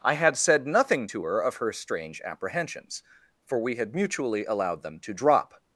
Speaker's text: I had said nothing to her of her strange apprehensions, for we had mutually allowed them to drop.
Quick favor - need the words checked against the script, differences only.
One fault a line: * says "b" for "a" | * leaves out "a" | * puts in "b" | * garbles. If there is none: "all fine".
all fine